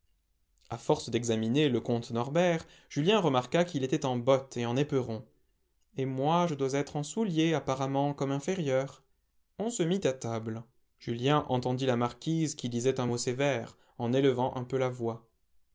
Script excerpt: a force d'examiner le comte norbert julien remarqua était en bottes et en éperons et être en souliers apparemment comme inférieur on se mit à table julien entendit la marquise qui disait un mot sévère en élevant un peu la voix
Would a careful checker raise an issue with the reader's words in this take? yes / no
yes